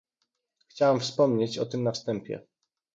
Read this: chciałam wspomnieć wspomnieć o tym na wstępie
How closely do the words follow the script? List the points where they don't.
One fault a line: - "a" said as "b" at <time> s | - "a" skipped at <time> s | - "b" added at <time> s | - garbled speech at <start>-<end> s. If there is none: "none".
- "wspomnieć" skipped at 1.6 s